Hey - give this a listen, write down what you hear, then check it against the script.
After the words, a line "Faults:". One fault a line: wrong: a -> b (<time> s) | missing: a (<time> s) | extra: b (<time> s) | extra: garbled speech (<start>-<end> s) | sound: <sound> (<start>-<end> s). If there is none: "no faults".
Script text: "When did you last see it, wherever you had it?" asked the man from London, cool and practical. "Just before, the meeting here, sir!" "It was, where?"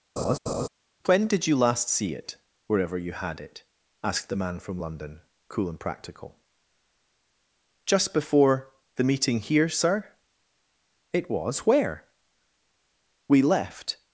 "When did you last see it, wherever you had it?" asked the man from London, cool and practical. "Just before, the meeting here, sir!" "It was, where?" "We left
Faults:
sound: laugh (0.2-0.7 s)
extra: We left (13.3 s)